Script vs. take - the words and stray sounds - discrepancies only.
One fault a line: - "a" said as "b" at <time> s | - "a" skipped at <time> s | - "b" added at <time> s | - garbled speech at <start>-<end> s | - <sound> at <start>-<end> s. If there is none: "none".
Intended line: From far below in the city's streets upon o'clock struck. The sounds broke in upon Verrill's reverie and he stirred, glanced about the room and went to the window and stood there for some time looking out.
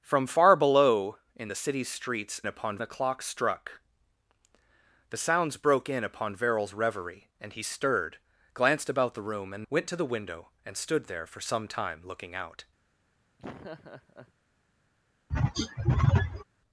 - laugh at 13.4-14.3 s
- throat clearing at 15.3-16.4 s